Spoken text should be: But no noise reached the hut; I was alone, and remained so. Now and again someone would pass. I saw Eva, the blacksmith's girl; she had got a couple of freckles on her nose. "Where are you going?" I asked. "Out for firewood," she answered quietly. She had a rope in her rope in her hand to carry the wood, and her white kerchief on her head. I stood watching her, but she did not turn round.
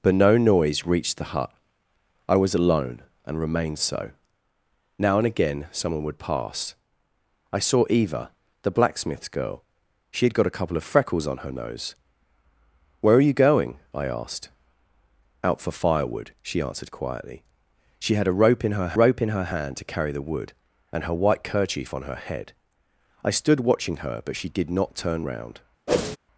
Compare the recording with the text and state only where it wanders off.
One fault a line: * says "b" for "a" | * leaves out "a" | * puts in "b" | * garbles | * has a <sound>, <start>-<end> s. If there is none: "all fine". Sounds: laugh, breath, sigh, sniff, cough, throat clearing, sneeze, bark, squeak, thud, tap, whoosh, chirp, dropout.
* has a whoosh, 25.9-26.2 s